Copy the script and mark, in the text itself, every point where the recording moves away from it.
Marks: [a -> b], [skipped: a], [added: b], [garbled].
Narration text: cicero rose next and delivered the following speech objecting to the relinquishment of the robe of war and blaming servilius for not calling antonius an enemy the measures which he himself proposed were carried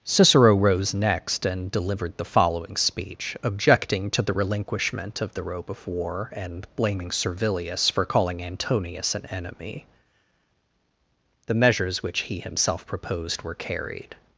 cicero rose next and delivered the following speech objecting to the relinquishment of the robe of war and blaming servilius for [skipped: not] calling antonius an enemy the measures which he himself proposed were carried